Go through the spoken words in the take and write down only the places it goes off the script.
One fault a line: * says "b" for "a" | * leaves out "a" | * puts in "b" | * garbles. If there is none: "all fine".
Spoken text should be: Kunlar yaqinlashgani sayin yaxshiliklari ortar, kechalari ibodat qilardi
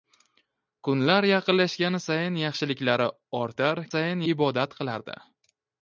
* says "sayin" for "kechalari"